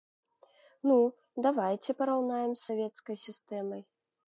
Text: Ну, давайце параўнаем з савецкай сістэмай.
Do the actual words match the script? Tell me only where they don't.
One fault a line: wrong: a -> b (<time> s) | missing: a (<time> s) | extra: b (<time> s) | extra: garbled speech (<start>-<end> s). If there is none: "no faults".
no faults